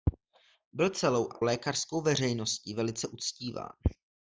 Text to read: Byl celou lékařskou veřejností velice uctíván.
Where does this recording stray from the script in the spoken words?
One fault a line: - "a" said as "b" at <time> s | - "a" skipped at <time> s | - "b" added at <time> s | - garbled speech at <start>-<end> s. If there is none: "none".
none